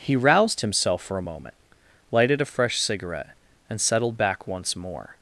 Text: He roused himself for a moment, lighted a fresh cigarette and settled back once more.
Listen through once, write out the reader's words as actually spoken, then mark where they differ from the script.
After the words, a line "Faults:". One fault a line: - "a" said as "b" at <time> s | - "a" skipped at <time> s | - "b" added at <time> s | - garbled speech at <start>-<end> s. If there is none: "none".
He roused himself for a moment, lighted a fresh cigarette and settled back once more.
Faults:
none